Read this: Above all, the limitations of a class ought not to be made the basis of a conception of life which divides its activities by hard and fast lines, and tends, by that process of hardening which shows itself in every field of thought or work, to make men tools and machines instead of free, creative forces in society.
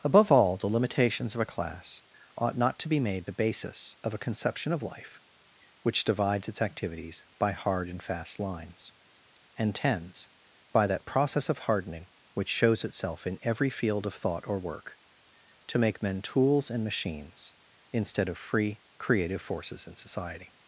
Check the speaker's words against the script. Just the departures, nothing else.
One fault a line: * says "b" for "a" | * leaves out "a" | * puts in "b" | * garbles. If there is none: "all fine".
all fine